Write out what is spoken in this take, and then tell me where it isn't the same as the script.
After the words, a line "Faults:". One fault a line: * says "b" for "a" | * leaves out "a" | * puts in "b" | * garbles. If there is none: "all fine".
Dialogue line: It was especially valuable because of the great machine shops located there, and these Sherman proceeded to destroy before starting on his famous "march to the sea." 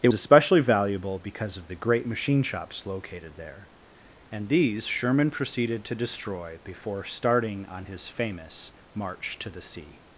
It especially valuable because of the great machine shops located there, and these Sherman proceeded to destroy before starting on his famous "march to the sea."
Faults:
* leaves out "was"